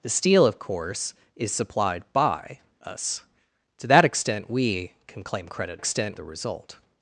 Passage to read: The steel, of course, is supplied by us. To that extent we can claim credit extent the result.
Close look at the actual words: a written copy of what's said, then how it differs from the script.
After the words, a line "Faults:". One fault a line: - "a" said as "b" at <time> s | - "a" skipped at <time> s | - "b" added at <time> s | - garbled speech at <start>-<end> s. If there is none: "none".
The steel, of course, is supplied by us. To that extent we can claim credit extent the result.
Faults:
none